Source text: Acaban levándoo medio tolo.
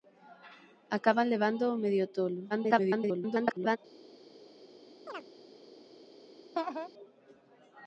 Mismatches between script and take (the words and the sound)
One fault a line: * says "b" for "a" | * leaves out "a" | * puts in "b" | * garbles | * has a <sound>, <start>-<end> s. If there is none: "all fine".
* garbles
* has a chirp, 5.1-5.3 s
* has a laugh, 6.5-6.9 s